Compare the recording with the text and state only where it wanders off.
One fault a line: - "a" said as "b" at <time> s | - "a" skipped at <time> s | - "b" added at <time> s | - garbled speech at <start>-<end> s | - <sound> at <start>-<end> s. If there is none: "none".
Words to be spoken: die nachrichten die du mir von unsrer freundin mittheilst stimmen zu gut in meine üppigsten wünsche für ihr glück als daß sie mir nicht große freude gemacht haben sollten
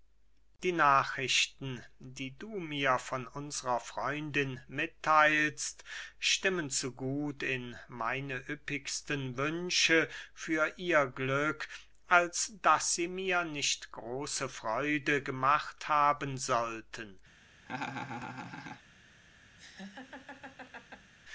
- laugh at 17.7-18.8 s
- laugh at 19.6-21.1 s